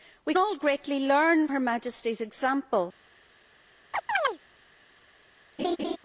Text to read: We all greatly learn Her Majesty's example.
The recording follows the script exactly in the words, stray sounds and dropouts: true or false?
false